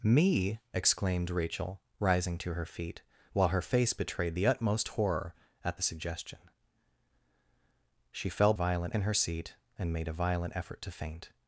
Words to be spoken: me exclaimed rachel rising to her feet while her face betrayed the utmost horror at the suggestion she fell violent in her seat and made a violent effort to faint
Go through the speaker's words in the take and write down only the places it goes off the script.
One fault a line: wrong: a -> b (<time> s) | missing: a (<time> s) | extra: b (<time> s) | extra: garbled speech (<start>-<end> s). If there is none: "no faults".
no faults